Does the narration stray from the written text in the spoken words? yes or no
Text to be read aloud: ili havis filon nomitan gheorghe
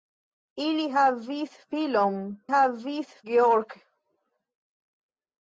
yes